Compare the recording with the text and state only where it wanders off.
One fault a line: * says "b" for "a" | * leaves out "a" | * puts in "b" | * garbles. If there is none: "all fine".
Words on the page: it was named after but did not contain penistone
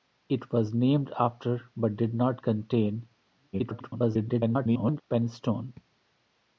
* garbles